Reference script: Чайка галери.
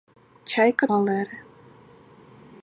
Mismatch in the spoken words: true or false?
false